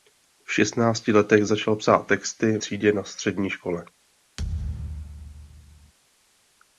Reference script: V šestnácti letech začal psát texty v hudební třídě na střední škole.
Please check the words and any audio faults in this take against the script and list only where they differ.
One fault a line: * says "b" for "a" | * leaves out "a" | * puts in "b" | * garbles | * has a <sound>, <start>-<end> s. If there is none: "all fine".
* leaves out "v hudební"
* has a thud, 4.4-5.9 s